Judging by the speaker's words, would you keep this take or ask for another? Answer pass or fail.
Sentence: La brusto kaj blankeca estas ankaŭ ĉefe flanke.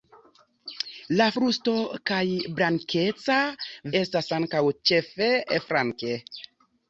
pass